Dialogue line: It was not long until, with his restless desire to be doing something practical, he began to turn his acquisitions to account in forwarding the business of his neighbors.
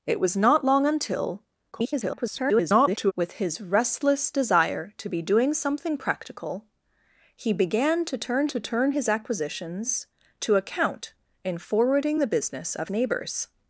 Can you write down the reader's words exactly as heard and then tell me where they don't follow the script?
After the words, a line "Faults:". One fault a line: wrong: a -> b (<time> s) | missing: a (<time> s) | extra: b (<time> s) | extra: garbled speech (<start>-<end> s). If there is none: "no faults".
It was not long until, [garbled] with his restless desire to be doing something practical, he began to turn to turn his acquisitions to account in forwarding the business of neighbors.
Faults:
extra: garbled speech (1.7-3.1 s)
extra: to turn (8.5 s)
missing: his (12.9 s)